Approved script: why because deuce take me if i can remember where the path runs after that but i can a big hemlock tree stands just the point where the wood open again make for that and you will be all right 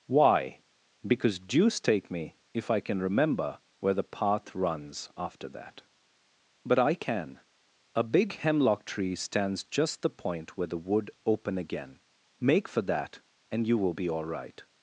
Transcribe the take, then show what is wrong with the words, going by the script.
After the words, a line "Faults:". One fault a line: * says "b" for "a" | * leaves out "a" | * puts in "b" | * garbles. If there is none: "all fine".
why because deuce take me if i can remember where the path runs after that but i can a big hemlock tree stands just the point where the wood open again make for that and you will be all right
Faults:
all fine